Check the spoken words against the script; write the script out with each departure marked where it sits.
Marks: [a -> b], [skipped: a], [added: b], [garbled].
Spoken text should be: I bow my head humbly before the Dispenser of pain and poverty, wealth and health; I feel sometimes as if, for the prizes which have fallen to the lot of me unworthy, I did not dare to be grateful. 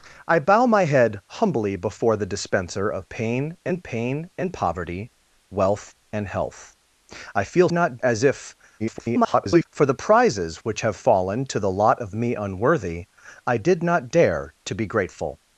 I bow my head humbly before the Dispenser of pain and [added: pain and] poverty, wealth and health; I feel [sometimes -> not] as if, [garbled] for the prizes which have fallen to the lot of me unworthy, I did not dare to be grateful.